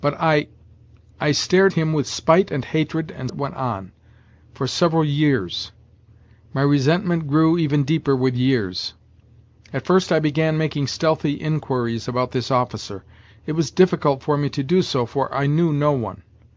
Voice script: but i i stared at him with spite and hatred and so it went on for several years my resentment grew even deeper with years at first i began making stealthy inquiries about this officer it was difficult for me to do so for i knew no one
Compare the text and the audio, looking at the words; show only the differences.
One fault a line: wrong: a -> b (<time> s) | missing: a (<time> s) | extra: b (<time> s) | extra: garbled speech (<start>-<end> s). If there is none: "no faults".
missing: at (1.7 s)
missing: so (3.3 s)